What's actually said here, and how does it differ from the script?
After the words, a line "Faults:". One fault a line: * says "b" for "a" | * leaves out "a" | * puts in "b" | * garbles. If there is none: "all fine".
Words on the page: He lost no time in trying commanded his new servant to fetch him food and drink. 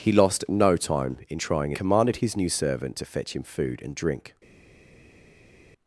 He lost no time in trying commanded his new servant to fetch him food and drink.
Faults:
all fine